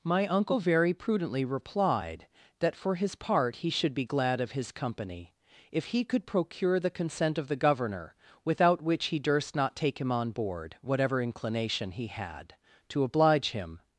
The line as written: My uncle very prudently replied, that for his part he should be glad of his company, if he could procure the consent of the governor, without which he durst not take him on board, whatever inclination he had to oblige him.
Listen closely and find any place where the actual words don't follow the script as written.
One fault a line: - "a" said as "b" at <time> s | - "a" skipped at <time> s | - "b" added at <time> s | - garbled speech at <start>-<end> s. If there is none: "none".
none